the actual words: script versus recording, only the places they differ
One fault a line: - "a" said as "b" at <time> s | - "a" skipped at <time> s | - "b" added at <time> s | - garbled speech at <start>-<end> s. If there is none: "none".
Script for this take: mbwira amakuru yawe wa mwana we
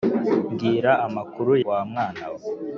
- "yawe" skipped at 1.5 s